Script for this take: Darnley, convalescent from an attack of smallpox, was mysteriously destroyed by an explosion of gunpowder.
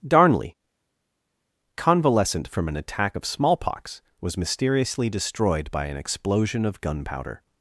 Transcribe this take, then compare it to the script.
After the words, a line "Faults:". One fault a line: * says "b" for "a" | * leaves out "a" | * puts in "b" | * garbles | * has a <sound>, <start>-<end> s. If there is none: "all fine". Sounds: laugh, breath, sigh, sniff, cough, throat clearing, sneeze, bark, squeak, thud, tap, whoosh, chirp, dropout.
Darnley, convalescent from an attack of smallpox, was mysteriously destroyed by an explosion of gunpowder.
Faults:
all fine